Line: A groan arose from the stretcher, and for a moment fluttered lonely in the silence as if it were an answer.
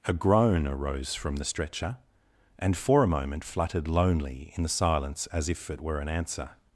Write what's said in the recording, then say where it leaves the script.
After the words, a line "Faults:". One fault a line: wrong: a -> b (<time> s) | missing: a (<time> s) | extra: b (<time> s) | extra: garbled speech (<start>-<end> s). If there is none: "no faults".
A groan arose from the stretcher, and for a moment fluttered lonely in the silence as if it were an answer.
Faults:
no faults